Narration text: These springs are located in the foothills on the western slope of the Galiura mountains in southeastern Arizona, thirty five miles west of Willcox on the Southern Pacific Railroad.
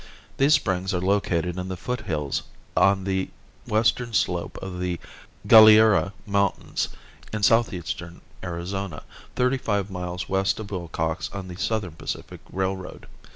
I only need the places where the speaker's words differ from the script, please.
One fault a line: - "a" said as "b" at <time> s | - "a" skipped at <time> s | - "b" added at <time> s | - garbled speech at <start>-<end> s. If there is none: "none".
none